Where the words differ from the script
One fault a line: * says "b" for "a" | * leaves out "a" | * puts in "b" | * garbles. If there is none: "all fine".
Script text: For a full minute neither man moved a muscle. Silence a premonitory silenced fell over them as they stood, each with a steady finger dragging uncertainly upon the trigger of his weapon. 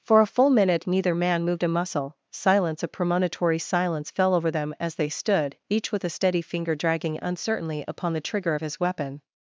* says "silence" for "silenced"